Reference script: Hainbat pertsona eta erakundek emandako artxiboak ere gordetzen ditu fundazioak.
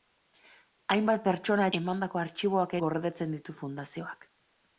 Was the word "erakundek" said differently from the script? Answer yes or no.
yes